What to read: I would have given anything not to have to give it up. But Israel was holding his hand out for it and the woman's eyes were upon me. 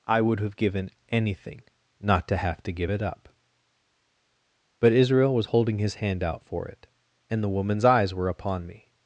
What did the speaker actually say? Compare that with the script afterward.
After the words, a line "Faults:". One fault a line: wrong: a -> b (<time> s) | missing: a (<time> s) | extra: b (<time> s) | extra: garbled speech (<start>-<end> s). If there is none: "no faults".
I would have given anything not to have to give it up. But Israel was holding his hand out for it and the woman's eyes were upon me.
Faults:
no faults